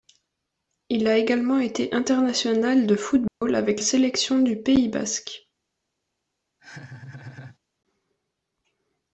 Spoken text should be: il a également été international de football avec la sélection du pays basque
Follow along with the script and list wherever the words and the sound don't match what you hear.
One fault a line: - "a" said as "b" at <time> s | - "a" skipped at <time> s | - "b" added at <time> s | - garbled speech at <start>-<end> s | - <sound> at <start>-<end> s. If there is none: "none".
- dropout at 3.3-3.4 s
- "la" skipped at 3.8 s
- laugh at 6.6-7.6 s